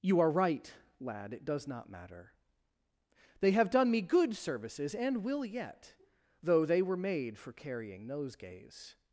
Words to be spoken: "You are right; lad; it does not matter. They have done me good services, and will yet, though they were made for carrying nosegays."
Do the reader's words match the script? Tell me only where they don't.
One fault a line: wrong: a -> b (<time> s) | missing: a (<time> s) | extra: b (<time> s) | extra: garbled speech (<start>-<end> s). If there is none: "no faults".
no faults